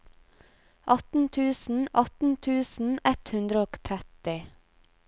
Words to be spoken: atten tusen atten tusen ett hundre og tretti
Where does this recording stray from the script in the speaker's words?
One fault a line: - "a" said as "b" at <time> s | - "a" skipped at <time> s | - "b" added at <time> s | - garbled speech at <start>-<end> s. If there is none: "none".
none